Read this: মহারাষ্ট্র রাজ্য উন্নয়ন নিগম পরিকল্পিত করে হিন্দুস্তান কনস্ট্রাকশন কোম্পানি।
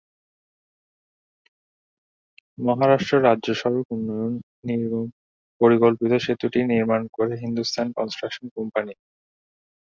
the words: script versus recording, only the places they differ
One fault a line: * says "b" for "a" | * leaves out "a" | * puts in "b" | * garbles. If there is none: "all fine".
* puts in "সড়ক"
* puts in "সেতুটি নির্মাণ"